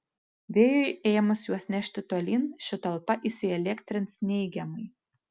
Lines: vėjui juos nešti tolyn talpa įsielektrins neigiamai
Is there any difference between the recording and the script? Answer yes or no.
yes